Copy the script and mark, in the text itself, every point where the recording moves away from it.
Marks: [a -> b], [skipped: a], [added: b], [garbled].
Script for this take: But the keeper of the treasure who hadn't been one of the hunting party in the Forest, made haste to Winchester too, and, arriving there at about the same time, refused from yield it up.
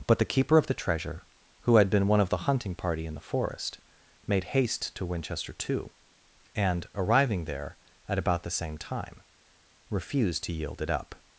But the keeper of the treasure who [hadn't -> had] been one of the hunting party in the Forest, made haste to Winchester too, and, arriving there at about the same time, refused [from -> to] yield it up.